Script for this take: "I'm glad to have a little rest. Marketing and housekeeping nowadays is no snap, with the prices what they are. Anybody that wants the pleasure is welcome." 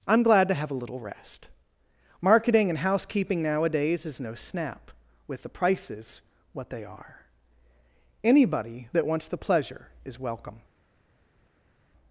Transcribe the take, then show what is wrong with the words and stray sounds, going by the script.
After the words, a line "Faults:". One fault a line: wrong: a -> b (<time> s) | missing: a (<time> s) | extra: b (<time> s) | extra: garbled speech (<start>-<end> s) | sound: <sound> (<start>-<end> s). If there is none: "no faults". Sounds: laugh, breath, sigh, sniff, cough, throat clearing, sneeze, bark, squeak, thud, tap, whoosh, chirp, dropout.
"I'm glad to have a little rest. Marketing and housekeeping nowadays is no snap, with the prices what they are. Anybody that wants the pleasure is welcome."
Faults:
no faults